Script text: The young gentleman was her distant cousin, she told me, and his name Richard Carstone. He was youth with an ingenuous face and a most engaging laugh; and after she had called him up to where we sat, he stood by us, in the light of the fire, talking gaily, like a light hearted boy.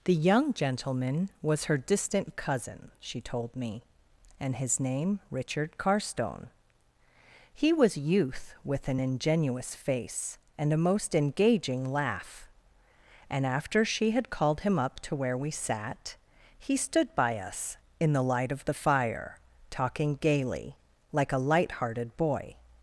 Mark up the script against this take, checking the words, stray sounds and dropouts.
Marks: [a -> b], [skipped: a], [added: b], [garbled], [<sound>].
The young gentleman was her distant cousin, she told me, and his name Richard Carstone. He was youth with an ingenuous face and a most engaging laugh; and after she had called him up to where we sat, he stood by us, in the light of the fire, talking gaily, like a light hearted boy.